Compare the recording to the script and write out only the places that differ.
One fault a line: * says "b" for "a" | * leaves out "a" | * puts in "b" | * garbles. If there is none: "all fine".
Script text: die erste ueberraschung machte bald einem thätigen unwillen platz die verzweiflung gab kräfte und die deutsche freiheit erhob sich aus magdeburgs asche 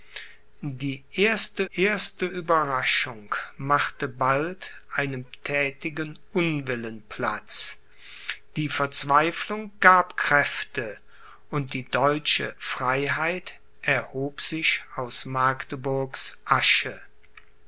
* puts in "erste"